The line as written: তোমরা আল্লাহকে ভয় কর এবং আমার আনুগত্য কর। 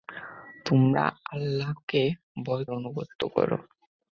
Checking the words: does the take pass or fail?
fail